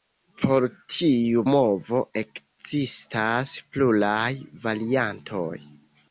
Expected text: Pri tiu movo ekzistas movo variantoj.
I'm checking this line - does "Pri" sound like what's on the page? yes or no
no